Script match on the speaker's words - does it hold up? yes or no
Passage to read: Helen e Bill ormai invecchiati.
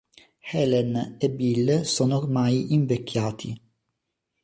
no